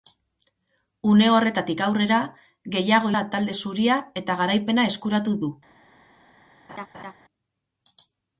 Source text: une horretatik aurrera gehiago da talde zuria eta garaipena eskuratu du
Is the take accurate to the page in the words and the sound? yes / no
no